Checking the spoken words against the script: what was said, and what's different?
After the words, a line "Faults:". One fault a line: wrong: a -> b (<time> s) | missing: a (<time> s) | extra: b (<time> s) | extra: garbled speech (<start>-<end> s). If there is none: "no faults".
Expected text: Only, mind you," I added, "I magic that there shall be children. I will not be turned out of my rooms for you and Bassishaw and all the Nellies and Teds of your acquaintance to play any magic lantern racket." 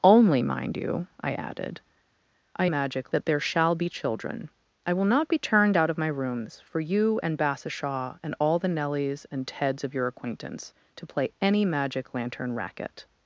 Only, mind you," I added, "I magic that there shall be children. I will not be turned out of my rooms for you and Bassishaw and all the Nellies and Teds of your acquaintance to play any magic lantern racket."
Faults:
no faults